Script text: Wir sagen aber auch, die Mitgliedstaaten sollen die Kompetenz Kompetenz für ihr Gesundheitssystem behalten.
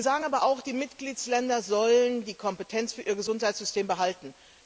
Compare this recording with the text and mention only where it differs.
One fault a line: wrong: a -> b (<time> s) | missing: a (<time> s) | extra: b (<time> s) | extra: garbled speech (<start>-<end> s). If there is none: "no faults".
missing: Kompetenz (2.9 s)